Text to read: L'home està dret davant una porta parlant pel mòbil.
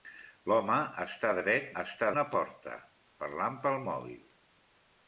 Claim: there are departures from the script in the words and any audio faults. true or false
true